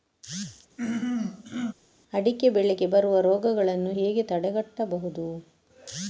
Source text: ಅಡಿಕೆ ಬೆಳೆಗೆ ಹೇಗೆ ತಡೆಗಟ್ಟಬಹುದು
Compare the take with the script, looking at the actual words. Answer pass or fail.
fail